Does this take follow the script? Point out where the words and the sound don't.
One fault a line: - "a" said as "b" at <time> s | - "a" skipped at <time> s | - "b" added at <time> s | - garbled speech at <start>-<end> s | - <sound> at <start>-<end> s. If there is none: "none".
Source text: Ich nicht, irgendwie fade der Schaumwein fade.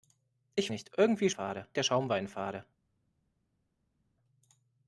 none